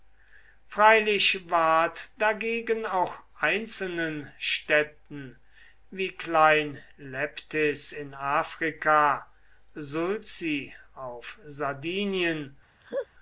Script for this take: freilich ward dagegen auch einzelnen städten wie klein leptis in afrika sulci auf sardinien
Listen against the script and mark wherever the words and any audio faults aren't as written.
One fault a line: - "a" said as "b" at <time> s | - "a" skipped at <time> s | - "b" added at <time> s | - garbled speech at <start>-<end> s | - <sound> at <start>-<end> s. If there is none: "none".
- laugh at 12.8-13.1 s